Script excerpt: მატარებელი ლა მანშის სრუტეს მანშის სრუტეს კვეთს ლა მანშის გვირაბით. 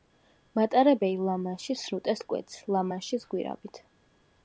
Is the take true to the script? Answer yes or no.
no